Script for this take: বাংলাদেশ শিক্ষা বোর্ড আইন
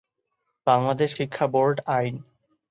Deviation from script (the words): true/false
false